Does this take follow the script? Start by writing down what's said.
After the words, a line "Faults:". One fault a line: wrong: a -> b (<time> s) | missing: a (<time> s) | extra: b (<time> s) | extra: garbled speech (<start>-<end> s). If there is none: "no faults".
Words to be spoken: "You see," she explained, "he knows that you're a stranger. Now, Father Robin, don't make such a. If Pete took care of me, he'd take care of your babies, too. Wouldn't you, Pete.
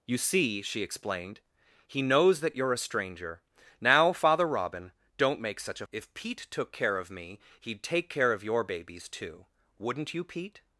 "You see," she explained, "he knows that you're a stranger. Now, Father Robin, don't make such a. If Pete took care of me, he'd take care of your babies, too. Wouldn't you, Pete.
Faults:
no faults